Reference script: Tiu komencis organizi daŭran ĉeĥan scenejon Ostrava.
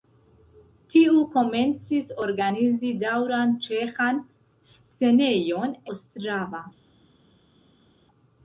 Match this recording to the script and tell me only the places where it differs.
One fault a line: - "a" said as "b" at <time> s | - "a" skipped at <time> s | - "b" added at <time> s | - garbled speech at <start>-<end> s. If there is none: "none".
none